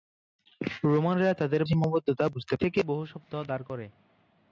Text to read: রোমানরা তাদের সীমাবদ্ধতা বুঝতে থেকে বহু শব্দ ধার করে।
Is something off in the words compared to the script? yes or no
no